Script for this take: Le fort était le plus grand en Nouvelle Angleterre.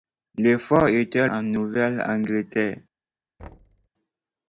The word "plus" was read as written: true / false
false